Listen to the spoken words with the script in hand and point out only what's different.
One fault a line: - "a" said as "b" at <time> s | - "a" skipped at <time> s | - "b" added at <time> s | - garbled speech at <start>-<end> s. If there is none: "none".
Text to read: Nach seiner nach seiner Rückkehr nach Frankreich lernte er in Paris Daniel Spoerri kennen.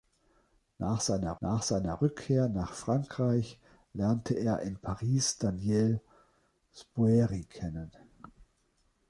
none